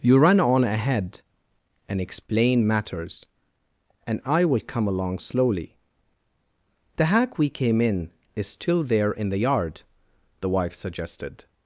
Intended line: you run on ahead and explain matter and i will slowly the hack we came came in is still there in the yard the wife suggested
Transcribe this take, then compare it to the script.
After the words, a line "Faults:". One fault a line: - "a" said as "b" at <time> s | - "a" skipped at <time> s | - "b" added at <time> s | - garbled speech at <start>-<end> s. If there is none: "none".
you run on ahead and explain matters and i will come along slowly the hack we came in is still there in the yard the wife suggested
Faults:
- "matter" said as "matters" at 2.6 s
- "come along" added at 4.6 s
- "came" skipped at 7.8 s